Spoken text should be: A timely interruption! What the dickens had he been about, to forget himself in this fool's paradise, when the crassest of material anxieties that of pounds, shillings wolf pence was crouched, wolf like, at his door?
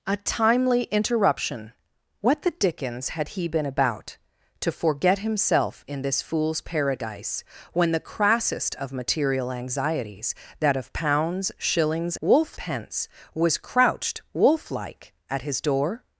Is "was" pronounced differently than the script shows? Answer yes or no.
no